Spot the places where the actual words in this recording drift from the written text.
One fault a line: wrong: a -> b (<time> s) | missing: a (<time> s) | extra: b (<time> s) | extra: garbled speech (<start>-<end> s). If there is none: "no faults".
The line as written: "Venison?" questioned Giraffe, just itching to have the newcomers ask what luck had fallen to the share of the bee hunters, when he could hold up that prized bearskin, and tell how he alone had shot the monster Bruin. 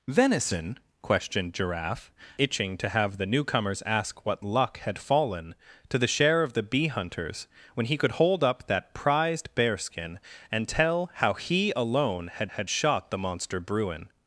missing: just (2.1 s)
extra: had (12.5 s)